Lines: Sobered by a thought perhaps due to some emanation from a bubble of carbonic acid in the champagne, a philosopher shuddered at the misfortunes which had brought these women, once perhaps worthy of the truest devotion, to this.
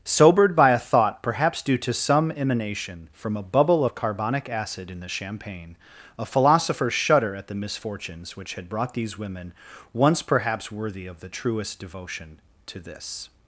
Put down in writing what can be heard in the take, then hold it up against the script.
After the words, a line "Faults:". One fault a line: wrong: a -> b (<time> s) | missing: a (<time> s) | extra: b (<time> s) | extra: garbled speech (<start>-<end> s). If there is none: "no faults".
Sobered by a thought perhaps due to some emanation from a bubble of carbonic acid in the champagne, a philosopher shudder at the misfortunes which had brought these women, once perhaps worthy of the truest devotion, to this.
Faults:
wrong: shuddered -> shudder (6.9 s)